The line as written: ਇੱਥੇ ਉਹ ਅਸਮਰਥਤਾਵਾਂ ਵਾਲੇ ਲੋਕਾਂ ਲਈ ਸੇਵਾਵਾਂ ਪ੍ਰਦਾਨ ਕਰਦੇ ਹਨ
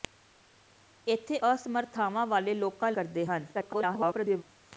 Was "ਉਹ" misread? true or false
true